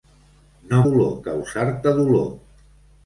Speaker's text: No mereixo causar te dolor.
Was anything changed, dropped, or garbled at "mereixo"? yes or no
yes